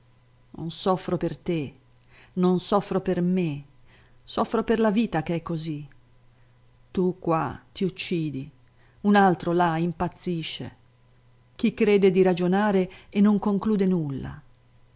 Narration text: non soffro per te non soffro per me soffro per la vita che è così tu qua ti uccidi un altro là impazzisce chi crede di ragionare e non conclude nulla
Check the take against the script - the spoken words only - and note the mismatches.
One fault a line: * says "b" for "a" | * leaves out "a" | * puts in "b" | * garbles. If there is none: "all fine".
all fine